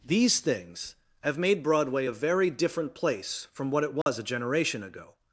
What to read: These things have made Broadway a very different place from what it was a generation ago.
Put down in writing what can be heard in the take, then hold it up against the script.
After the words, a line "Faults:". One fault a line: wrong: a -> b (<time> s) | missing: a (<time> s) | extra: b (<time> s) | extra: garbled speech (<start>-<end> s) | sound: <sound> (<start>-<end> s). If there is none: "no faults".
These things have made Broadway a very different place from what it was a generation ago.
Faults:
sound: dropout (4.0-4.1 s)